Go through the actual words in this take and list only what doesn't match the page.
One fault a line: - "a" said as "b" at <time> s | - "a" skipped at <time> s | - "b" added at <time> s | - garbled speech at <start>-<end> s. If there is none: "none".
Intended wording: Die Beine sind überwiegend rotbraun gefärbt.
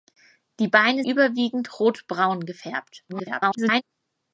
- "sind" skipped at 1.0 s
- garbled speech at 3.1-3.8 s